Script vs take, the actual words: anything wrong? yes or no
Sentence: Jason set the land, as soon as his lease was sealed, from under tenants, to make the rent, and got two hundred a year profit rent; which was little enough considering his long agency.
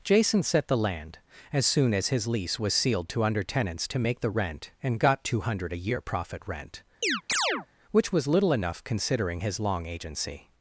yes